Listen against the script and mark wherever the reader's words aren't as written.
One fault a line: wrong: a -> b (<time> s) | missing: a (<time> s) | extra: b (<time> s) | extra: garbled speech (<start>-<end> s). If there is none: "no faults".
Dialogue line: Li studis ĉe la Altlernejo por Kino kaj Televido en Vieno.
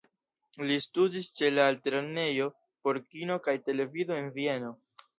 no faults